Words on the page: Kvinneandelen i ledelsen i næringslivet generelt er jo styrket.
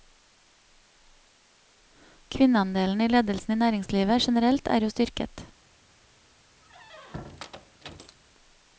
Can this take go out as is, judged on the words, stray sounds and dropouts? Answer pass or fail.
fail